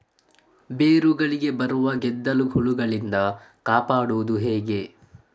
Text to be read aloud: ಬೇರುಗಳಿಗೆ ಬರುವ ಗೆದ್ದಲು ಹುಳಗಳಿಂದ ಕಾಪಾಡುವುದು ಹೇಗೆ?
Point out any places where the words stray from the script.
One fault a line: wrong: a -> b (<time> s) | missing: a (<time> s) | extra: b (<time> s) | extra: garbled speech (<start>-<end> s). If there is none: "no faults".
no faults